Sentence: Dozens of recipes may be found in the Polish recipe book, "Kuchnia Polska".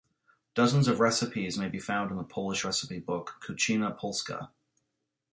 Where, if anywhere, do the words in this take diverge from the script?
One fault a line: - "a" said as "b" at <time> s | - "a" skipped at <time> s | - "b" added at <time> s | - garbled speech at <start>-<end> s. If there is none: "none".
none